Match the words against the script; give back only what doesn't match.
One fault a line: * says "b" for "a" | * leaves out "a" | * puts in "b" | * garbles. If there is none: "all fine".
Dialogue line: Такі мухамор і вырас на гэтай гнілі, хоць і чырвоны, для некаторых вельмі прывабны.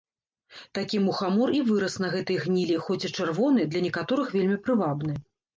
all fine